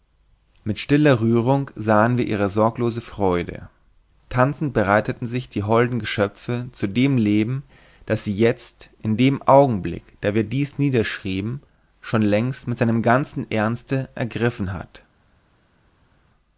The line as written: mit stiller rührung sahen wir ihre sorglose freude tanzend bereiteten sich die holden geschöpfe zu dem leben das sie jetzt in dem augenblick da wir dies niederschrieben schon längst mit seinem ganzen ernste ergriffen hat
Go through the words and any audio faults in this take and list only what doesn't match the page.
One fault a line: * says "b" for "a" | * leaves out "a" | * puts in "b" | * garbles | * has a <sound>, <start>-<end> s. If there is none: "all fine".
all fine